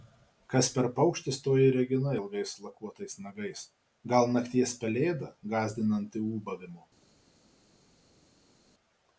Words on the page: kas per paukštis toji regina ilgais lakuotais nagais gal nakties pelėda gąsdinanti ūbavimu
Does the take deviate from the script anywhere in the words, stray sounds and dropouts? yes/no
no